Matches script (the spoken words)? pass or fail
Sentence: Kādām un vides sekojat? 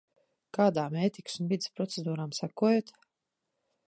fail